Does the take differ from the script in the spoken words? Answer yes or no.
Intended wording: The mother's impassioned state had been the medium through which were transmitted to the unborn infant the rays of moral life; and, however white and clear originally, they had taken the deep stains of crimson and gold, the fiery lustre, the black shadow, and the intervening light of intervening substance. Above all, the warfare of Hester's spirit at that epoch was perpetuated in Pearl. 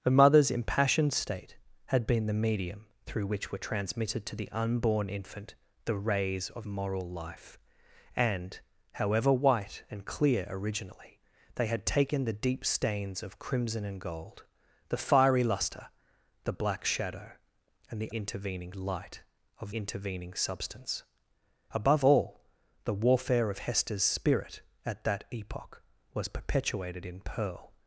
no